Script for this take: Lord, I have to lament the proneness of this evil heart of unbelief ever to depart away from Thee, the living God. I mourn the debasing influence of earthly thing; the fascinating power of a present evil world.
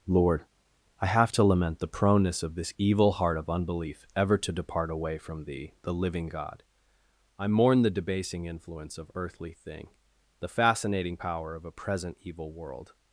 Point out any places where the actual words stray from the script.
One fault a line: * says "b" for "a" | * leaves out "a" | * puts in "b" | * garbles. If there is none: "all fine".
all fine